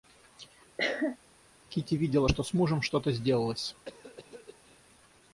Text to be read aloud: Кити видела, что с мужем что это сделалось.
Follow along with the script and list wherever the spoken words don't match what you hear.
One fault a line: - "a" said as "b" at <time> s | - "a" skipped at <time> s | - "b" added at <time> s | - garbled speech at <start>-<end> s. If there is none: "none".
- "это" said as "то" at 3.0 s